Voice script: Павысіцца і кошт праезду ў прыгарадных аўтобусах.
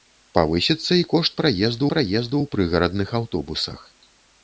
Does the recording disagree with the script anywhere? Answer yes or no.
yes